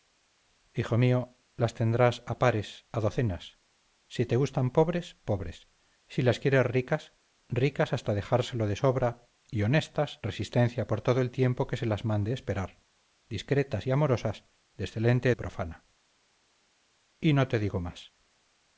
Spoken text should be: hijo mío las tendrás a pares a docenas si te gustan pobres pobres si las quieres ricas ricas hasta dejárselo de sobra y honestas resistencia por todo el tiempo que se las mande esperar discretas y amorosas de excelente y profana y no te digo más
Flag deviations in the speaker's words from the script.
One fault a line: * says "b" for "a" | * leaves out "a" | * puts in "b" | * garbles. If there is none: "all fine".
all fine